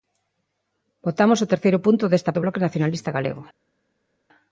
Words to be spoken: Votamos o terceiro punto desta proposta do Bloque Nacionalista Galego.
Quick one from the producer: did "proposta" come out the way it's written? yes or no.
no